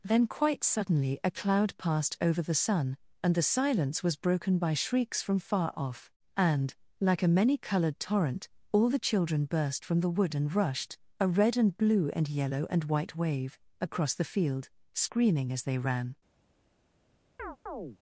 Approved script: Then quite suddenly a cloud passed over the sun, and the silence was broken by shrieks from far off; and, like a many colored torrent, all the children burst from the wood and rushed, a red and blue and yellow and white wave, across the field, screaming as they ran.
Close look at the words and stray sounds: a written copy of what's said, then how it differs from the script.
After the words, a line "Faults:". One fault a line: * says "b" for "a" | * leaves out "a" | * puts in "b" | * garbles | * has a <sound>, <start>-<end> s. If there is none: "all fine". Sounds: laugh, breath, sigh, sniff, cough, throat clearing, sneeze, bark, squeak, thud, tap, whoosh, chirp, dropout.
Then quite suddenly a cloud passed over the sun, and the silence was broken by shrieks from far off; and, like a many colored torrent, all the children burst from the wood and rushed, a red and blue and yellow and white wave, across the field, screaming as they ran.
Faults:
* has a chirp, 17.4-18.0 s